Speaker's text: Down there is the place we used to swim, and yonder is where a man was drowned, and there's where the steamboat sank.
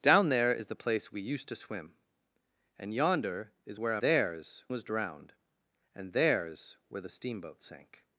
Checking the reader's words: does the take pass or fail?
fail